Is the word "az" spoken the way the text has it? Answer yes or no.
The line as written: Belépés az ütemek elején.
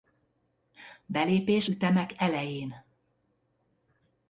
no